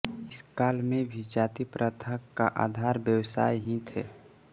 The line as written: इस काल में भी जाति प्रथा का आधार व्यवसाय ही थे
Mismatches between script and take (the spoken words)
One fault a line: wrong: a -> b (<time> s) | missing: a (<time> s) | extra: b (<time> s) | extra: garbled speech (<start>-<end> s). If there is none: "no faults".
no faults